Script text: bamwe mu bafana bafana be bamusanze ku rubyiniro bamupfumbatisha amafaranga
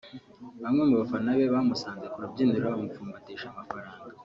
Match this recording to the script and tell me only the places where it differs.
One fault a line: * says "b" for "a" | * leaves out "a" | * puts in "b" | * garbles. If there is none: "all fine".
* leaves out "bafana"